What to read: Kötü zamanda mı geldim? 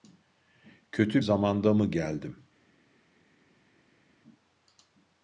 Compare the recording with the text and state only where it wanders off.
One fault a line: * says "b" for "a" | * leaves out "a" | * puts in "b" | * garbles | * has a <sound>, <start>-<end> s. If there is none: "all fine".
all fine